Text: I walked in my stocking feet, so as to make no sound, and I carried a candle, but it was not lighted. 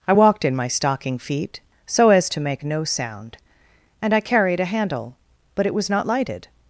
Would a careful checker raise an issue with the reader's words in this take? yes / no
yes